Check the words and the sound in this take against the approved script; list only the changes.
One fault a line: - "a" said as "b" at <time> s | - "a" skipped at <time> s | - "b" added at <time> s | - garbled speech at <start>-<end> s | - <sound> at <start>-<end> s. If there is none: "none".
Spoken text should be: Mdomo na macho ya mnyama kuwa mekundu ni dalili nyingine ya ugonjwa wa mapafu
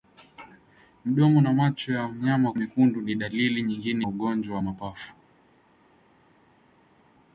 - "kuwa" skipped at 2.5 s
- "ya" skipped at 4.1 s